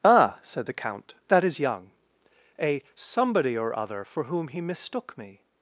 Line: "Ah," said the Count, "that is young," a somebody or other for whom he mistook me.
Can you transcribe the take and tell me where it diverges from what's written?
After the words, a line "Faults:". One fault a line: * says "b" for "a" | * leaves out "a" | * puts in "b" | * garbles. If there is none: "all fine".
"Ah," said the Count, "that is young," a somebody or other for whom he mistook me.
Faults:
all fine